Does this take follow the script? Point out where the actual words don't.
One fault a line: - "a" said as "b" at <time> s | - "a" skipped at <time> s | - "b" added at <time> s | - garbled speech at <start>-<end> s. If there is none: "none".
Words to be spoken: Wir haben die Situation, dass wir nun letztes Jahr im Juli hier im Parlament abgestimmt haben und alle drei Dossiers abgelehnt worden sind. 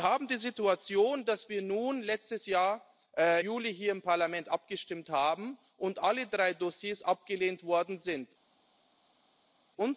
- "im" skipped at 2.8 s